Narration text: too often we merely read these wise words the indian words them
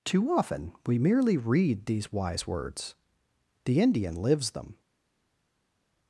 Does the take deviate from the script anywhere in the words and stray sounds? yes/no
yes